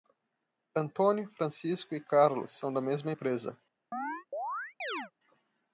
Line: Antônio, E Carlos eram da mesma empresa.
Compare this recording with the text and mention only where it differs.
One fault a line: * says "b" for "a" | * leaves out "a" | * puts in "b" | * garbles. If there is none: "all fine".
* puts in "Francisco"
* says "são" for "eram"